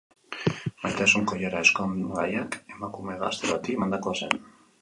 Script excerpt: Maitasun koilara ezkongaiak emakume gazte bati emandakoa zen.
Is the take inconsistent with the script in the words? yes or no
no